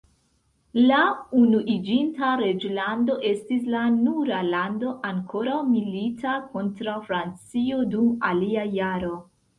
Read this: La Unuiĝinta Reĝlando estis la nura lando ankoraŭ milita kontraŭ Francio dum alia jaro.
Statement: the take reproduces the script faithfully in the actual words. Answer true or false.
true